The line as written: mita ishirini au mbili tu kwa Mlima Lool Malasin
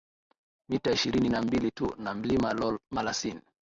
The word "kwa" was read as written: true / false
false